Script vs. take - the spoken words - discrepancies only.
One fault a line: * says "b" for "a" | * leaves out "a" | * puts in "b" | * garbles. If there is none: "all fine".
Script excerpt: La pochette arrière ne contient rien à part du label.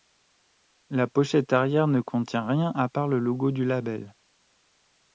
* puts in "le logo"